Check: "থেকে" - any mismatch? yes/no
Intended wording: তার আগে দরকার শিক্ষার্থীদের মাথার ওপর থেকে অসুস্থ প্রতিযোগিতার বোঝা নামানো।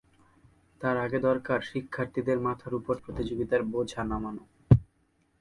yes